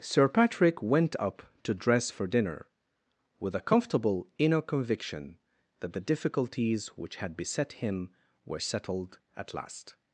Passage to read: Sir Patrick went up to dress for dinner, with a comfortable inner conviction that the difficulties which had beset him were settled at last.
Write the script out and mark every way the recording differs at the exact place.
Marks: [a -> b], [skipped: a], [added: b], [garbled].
Sir Patrick went up to dress for dinner, with a comfortable inner conviction that the difficulties which had beset him were settled at last.